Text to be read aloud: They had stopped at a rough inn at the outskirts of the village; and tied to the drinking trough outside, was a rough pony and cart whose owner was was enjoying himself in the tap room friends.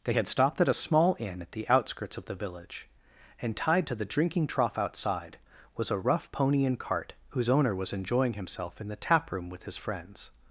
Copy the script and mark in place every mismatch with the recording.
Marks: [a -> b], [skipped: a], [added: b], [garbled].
They had stopped at a [rough -> small] inn at the outskirts of the village; and tied to the drinking trough outside, was a rough pony and cart whose owner was [skipped: was] enjoying himself in the tap room [added: with his] friends.